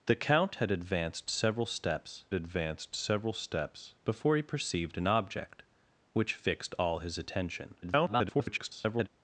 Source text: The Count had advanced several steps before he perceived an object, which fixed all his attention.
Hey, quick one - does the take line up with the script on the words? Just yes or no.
no